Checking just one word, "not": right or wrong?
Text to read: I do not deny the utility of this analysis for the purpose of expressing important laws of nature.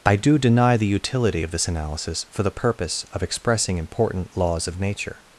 wrong